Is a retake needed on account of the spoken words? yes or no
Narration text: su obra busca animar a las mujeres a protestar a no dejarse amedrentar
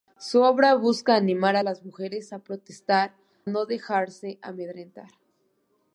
yes